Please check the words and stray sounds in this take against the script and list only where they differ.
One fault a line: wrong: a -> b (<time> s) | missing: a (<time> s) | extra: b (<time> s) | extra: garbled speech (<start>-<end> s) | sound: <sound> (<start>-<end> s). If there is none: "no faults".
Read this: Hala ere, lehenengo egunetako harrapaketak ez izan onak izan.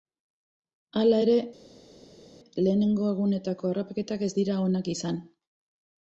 wrong: izan -> dira (4.4 s)